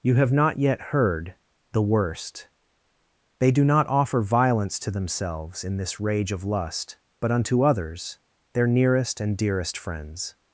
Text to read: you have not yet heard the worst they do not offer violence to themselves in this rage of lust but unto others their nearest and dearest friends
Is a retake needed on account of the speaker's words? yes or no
no